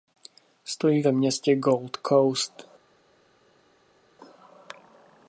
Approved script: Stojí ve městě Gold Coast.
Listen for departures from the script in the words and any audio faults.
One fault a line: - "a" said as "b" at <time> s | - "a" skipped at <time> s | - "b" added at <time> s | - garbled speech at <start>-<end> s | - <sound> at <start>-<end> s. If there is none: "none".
none